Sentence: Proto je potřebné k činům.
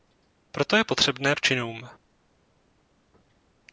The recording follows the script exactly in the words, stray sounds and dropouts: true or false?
true